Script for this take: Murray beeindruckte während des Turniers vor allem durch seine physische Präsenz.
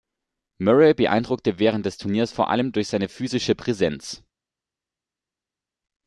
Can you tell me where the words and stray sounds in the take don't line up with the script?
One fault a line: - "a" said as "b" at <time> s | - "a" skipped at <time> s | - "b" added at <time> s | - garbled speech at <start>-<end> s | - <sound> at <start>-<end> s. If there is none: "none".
none